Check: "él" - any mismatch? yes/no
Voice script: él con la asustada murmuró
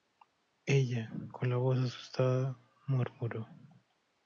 yes